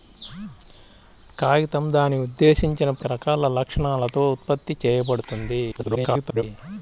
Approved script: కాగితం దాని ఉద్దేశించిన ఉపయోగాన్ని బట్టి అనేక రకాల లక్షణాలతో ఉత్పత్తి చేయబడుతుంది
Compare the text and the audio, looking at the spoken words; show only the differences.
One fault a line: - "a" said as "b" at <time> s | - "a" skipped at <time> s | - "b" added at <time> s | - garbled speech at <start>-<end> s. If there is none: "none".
- "ఉపయోగాన్ని బట్టి అనేక" skipped at 2.9 s
- garbled speech at 5.7-6.4 s